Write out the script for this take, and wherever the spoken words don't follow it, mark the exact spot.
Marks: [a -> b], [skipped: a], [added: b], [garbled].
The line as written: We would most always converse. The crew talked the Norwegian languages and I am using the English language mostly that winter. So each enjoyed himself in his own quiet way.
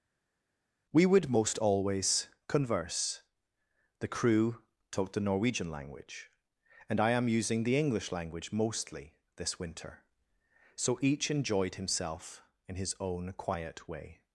We would most always converse. The crew talked the Norwegian [languages -> language] and I am using the English language mostly [that -> this] winter. So each enjoyed himself in his own quiet way.